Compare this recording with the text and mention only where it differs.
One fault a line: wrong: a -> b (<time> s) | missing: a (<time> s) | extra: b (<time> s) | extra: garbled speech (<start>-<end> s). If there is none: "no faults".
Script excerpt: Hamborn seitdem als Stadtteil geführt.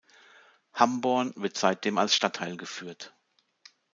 extra: wird (1.4 s)